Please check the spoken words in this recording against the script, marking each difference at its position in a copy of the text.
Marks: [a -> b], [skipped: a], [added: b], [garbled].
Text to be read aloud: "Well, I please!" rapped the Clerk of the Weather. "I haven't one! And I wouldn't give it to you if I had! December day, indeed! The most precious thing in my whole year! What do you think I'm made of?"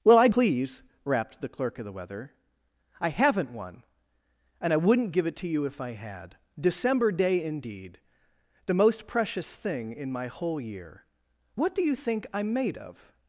"Well, I please!" rapped the Clerk of the Weather. "I haven't one! And I wouldn't give it to you if I had! December day, indeed! The most precious thing in my whole year! What do you think I'm made of?"